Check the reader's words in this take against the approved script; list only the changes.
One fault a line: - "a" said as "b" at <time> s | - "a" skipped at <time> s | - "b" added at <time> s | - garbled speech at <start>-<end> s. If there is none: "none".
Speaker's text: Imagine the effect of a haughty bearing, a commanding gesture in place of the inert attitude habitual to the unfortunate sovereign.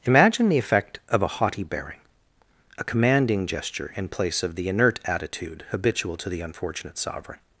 none